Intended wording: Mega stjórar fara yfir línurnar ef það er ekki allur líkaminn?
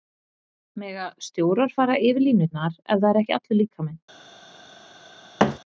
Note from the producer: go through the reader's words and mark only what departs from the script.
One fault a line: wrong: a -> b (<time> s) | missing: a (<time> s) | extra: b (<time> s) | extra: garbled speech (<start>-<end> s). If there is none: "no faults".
no faults